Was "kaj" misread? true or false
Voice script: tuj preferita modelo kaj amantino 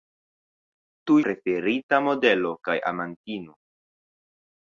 false